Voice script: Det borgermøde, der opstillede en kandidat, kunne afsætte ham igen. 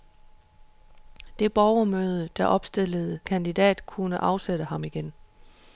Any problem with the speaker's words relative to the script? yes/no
yes